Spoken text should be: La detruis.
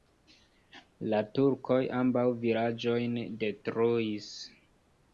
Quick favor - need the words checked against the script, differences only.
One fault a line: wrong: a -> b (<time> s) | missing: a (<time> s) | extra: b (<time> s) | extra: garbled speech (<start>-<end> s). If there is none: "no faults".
extra: turkoj ambaŭ vilaĝojn (1.4 s)